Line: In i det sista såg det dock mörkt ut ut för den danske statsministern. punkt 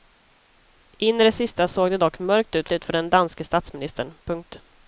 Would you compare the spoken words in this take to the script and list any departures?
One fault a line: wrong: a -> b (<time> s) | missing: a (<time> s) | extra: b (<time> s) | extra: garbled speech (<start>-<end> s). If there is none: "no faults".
no faults